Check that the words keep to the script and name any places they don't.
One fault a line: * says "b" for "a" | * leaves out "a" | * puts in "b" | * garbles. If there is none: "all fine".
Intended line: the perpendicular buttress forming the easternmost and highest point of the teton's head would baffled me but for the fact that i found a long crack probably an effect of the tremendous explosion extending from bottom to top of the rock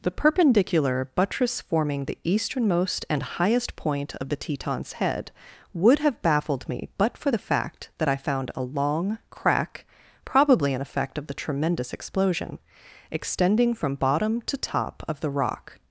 * puts in "have"